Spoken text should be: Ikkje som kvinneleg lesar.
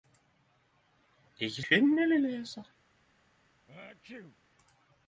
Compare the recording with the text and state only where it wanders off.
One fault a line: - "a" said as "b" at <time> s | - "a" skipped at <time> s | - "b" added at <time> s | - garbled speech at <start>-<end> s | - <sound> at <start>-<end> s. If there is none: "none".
- "som" skipped at 1.6 s
- sneeze at 3.7-4.4 s